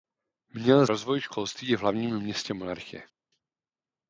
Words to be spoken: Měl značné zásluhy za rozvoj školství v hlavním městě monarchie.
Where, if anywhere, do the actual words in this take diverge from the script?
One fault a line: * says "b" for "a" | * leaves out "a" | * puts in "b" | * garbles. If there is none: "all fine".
* leaves out "značné zásluhy za"